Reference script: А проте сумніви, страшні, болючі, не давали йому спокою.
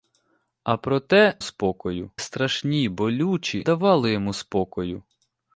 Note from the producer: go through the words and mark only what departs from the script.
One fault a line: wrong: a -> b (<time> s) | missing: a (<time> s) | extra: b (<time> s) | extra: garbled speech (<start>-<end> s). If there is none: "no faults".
wrong: сумніви -> спокою (1.4 s)
missing: не (3.7 s)